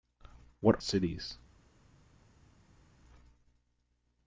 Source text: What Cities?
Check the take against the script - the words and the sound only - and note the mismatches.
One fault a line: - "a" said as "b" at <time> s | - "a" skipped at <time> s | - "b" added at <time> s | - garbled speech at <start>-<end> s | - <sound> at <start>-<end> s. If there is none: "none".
none